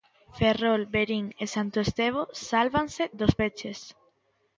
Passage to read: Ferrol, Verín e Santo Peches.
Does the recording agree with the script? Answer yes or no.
no